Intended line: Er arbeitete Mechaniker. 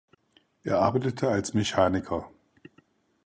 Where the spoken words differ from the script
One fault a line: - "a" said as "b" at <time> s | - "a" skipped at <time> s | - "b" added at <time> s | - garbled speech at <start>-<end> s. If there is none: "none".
- "als" added at 1.3 s